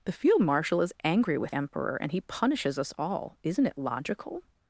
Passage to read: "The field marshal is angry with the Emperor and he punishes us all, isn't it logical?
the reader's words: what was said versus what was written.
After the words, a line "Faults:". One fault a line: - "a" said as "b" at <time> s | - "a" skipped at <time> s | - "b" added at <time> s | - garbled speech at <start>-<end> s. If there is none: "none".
"The field marshal is angry with Emperor and he punishes us all, isn't it logical?
Faults:
- "the" skipped at 1.6 s